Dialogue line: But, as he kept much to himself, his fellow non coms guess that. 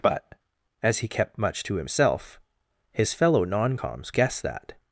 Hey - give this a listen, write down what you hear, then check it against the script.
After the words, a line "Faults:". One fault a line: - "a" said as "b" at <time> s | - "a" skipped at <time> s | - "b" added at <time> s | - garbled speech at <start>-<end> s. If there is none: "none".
But, as he kept much to himself, his fellow non coms guess that.
Faults:
none